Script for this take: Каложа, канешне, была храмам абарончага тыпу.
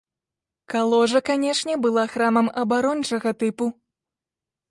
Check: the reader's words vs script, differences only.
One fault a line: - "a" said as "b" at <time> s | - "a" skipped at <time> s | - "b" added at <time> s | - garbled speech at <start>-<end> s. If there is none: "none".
none